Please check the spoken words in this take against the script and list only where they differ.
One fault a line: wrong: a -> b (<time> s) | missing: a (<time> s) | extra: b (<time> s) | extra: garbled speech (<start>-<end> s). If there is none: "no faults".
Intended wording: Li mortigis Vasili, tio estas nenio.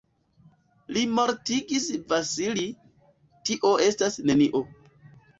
no faults